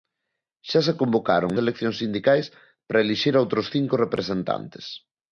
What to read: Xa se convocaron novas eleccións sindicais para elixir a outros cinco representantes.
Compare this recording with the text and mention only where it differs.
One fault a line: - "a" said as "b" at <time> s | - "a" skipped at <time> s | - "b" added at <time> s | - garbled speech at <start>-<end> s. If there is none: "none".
- "novas" skipped at 1.5 s